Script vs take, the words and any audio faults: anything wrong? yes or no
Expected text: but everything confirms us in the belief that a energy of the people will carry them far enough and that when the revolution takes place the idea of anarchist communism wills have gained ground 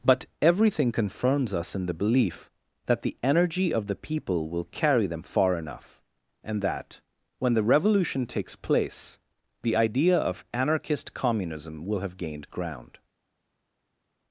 yes